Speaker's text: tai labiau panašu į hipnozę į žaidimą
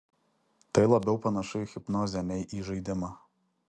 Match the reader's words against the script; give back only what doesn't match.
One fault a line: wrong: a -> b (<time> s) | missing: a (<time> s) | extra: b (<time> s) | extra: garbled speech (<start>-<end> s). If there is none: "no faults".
extra: nei (2.3 s)